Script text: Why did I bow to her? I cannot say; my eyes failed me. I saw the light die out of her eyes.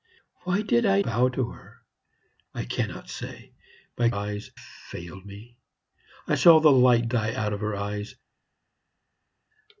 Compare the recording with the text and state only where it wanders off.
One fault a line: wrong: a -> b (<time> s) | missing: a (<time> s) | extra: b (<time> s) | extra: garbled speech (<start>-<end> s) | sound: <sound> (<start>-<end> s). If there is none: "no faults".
no faults